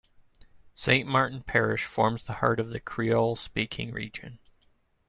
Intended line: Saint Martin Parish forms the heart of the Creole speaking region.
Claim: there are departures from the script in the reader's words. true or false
false